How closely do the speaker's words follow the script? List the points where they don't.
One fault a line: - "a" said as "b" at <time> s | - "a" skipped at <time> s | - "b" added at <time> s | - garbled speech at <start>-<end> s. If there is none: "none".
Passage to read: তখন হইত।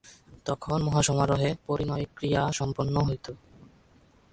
- "মহাসমারোহে পরিণয়ক্রিয়া সম্পন্ন" added at 0.8 s